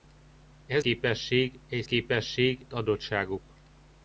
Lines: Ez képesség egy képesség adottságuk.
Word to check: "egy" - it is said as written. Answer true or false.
true